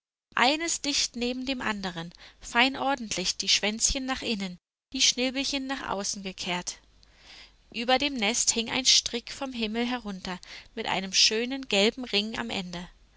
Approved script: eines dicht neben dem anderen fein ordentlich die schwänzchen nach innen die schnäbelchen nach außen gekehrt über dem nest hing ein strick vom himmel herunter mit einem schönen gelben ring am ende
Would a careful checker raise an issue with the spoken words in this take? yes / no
no